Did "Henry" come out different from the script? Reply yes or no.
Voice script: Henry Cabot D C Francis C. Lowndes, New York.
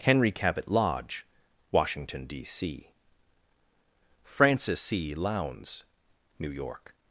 no